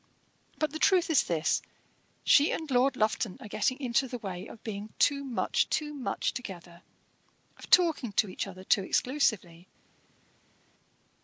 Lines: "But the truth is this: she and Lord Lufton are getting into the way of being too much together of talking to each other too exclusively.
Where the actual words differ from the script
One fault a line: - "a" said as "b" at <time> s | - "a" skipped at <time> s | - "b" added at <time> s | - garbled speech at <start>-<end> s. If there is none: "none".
- "too much" added at 5.7 s